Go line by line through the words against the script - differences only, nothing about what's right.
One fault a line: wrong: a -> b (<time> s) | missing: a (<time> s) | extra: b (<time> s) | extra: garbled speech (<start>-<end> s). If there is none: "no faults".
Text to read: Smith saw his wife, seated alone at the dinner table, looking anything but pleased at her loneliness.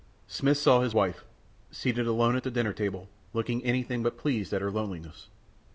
no faults